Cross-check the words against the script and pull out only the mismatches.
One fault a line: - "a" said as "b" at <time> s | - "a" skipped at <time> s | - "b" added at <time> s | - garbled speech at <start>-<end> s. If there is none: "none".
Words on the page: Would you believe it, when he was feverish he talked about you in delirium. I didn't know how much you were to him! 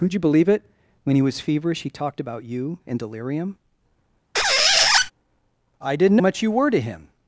- "know how" skipped at 6.2 s